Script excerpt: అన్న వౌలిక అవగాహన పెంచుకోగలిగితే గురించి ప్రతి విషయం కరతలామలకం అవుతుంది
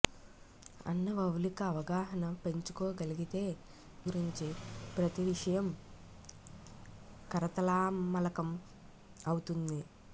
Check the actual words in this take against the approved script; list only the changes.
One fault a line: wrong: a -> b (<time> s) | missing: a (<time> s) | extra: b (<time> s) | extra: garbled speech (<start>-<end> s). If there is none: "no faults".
no faults